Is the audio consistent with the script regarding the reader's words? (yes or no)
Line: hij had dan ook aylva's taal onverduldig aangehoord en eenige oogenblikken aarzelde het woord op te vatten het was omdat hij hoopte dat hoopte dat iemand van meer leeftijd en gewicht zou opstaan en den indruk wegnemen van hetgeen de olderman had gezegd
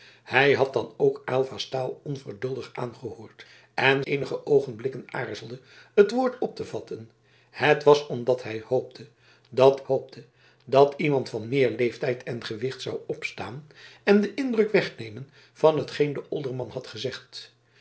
yes